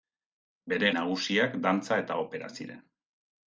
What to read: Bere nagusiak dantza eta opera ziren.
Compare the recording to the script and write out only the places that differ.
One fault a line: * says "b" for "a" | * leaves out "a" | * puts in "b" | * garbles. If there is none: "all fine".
all fine